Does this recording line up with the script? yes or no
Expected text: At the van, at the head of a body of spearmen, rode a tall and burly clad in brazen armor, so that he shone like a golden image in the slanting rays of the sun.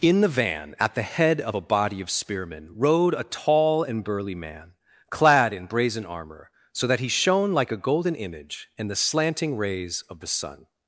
no